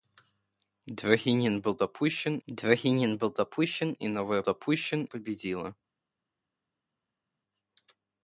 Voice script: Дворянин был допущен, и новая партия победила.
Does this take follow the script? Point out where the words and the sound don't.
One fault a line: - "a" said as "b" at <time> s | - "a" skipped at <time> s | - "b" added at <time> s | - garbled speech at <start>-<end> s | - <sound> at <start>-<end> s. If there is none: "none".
- "дворянин был допущен" added at 2.5 s
- "партия" said as "допущен" at 4.4 s